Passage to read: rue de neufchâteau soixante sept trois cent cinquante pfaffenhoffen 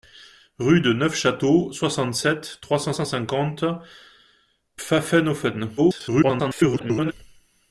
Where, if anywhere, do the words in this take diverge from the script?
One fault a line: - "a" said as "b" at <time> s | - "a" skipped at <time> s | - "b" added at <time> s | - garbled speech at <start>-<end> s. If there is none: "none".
- "cent" added at 2.9 s
- garbled speech at 5.8-7.1 s